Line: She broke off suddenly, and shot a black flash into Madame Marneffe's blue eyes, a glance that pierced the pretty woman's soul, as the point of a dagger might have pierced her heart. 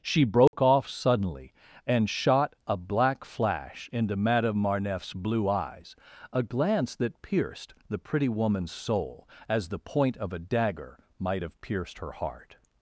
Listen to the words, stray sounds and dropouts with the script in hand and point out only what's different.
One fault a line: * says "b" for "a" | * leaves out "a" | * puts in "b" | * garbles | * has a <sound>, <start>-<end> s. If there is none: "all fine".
* has a dropout, 0.5-0.5 s